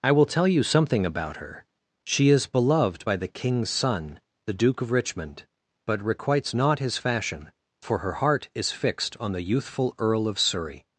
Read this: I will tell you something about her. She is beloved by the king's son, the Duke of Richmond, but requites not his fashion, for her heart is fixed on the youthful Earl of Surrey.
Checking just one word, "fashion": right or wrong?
right